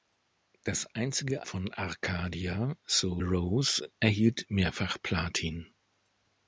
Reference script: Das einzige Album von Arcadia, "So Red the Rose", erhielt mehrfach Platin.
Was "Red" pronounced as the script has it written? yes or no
no